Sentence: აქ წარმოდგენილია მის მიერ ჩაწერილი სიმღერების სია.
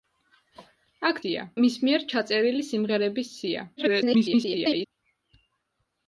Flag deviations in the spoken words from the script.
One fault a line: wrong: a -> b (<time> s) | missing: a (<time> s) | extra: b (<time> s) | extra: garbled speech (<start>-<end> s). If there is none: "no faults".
wrong: წარმოდგენილია -> სია (1.2 s)
extra: garbled speech (3.8-4.9 s)